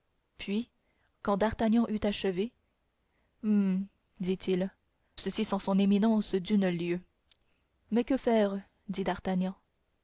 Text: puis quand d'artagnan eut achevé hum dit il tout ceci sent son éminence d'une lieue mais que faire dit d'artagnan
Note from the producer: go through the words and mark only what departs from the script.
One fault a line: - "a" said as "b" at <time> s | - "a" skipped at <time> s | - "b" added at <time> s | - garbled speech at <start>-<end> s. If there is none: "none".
- "tout" skipped at 4.7 s